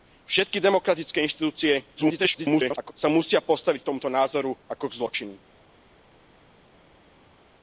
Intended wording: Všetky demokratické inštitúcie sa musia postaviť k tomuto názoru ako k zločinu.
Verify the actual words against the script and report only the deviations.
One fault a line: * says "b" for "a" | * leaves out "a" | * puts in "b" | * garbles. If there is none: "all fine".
* garbles